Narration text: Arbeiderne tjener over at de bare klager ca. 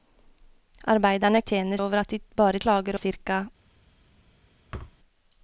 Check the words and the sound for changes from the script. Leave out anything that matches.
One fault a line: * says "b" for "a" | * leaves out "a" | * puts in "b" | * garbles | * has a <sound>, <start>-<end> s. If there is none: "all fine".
* has a thud, 4.7-5.0 s